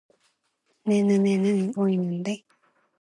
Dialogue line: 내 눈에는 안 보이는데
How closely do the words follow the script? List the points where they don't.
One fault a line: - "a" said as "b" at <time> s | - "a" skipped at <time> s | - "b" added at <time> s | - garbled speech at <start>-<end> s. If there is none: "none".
- "안" skipped at 1.7 s